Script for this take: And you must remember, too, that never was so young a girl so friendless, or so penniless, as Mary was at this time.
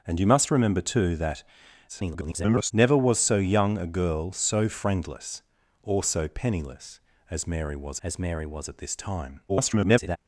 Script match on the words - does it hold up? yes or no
no